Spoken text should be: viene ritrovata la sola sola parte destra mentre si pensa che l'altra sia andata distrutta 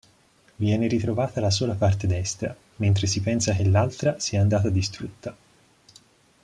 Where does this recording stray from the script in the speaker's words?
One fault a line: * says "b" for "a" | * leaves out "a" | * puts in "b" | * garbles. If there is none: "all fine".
* leaves out "sola"